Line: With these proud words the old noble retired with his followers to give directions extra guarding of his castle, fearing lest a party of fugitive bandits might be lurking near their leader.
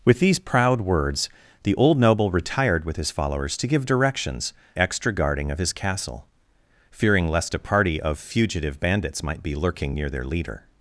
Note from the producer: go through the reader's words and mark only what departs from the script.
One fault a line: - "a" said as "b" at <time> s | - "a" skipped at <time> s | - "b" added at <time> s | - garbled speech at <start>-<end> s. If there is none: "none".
none